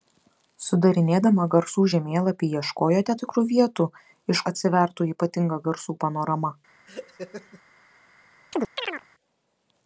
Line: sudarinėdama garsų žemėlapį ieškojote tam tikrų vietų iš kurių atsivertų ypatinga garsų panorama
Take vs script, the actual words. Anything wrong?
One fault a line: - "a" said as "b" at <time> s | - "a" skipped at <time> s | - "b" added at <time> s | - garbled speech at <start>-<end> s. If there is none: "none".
- "tam" skipped at 3.2 s
- "kurių" skipped at 4.4 s